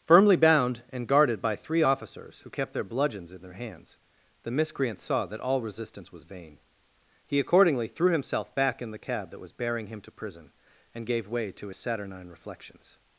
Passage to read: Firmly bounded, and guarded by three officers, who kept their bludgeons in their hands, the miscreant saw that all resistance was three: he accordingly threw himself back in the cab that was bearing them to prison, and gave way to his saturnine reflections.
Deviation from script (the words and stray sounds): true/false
true